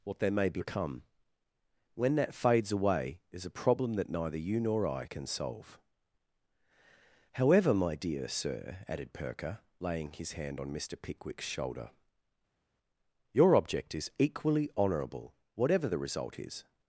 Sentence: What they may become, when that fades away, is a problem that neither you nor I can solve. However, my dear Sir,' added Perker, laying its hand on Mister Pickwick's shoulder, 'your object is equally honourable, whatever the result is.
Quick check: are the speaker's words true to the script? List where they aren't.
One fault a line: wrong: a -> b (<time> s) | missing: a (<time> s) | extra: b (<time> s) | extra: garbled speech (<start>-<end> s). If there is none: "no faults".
wrong: its -> his (10.1 s)